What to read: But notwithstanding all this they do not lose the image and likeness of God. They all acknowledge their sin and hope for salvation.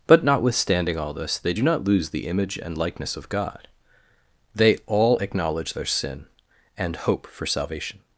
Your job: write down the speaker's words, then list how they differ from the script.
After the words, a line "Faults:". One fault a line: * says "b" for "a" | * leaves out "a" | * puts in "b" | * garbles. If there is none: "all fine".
But notwithstanding all this they do not lose the image and likeness of God. They all acknowledge their sin and hope for salvation.
Faults:
all fine